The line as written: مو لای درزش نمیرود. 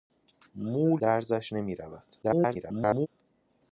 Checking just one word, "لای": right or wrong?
wrong